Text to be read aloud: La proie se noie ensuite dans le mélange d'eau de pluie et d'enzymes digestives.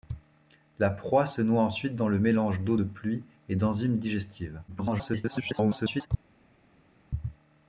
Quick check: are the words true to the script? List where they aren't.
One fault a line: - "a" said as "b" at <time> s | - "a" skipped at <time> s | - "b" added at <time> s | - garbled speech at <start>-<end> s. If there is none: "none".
- garbled speech at 4.7-6.1 s